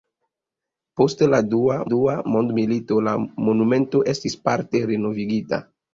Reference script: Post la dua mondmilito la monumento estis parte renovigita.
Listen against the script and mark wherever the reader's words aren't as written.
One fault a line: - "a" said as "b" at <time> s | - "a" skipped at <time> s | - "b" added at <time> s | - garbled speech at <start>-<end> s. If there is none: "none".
- "dua" added at 1.9 s